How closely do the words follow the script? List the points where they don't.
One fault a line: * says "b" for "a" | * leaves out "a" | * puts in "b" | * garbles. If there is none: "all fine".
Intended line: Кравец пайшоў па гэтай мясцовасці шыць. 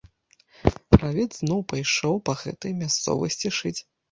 * puts in "зноў"